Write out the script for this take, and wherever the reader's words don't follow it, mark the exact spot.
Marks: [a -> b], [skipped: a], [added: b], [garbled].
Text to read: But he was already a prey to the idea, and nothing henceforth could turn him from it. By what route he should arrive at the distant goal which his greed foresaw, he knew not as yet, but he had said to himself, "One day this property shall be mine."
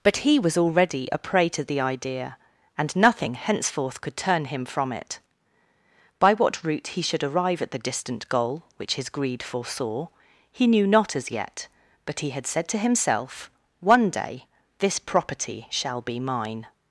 But he was already a prey to the idea, and nothing henceforth could turn him from it. By what route he should arrive at the distant goal which his greed foresaw, he knew not as yet, but he had said to himself, "One day this property shall be mine."